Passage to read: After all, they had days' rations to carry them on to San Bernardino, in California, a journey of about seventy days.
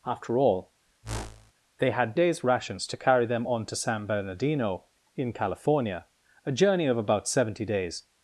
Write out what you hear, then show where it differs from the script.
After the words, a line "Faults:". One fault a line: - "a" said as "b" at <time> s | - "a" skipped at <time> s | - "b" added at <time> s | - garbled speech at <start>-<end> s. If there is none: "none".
After all, they had days' rations to carry them on to San Bernardino, in California, a journey of about seventy days.
Faults:
none